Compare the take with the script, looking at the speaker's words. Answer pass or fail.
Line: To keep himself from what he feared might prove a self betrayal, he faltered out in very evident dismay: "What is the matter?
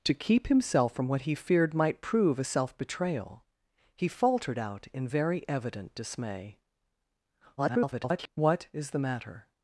fail